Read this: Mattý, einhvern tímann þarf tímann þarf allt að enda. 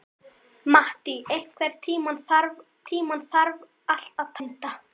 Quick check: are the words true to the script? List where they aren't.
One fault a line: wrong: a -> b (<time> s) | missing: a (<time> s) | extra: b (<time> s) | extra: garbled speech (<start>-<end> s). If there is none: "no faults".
no faults